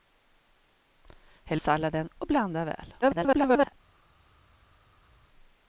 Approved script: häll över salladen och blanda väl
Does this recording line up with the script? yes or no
no